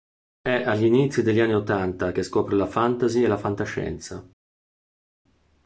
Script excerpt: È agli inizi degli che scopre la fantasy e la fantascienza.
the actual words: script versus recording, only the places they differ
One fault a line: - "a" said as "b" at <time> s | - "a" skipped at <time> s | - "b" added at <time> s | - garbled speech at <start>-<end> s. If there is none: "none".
- "anni ottanta" added at 1.4 s